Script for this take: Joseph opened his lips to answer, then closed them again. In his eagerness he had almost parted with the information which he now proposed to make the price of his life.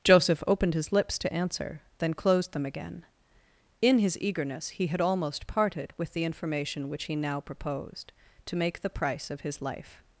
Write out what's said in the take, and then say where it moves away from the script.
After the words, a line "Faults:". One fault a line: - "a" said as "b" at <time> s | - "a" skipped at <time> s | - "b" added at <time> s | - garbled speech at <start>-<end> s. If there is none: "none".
Joseph opened his lips to answer, then closed them again. In his eagerness he had almost parted with the information which he now proposed to make the price of his life.
Faults:
none